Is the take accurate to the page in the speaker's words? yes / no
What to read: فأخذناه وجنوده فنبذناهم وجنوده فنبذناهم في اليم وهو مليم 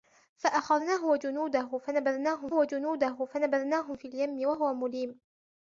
yes